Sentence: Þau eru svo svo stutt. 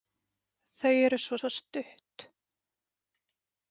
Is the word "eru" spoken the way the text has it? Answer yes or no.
yes